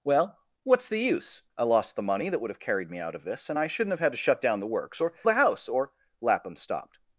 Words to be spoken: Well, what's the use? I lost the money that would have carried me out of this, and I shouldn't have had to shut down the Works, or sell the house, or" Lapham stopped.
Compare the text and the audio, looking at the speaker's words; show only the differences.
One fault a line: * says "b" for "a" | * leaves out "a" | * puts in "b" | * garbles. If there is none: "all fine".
* leaves out "sell"